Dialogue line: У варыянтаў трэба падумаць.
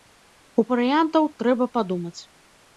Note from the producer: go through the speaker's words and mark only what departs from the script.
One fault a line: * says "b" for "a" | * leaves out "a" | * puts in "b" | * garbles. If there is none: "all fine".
all fine